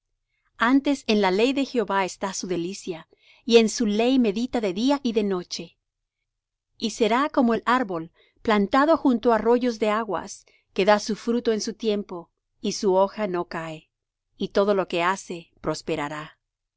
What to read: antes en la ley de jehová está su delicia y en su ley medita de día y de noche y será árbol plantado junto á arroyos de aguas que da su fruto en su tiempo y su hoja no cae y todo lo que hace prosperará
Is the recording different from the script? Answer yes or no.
yes